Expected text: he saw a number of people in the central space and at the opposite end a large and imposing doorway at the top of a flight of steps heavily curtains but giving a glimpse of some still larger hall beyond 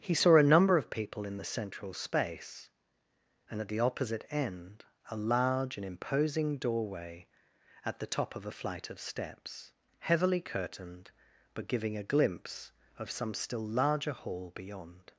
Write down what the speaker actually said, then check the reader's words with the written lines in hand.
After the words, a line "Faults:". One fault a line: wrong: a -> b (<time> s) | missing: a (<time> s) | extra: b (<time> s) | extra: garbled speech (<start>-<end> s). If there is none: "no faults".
he saw a number of people in the central space and at the opposite end a large and imposing doorway at the top of a flight of steps heavily curtained but giving a glimpse of some still larger hall beyond
Faults:
wrong: curtains -> curtained (10.4 s)